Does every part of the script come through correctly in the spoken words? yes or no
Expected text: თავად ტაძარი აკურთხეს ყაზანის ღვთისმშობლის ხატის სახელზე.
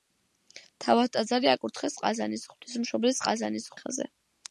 no